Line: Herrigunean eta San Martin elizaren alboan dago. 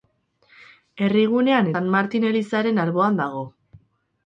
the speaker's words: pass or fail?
fail